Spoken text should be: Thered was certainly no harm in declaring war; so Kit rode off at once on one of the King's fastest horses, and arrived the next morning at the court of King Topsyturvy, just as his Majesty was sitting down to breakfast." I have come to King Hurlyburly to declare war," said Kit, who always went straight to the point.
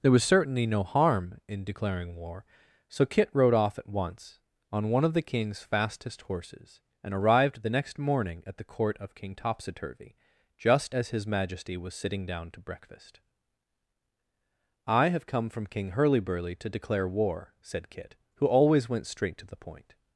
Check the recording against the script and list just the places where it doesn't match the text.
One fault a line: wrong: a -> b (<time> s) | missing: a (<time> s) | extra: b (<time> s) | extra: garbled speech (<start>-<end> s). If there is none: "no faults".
wrong: Thered -> There (0.0 s)
wrong: to -> from (15.5 s)